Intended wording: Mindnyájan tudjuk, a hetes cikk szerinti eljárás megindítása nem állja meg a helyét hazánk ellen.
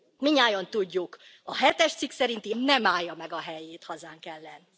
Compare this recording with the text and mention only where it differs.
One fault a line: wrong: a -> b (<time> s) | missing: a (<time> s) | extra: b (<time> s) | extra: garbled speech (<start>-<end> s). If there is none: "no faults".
missing: eljárás megindítása (2.5 s)